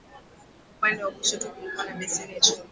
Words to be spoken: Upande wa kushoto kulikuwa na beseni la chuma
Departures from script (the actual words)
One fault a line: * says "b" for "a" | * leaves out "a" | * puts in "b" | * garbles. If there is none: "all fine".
* leaves out "la"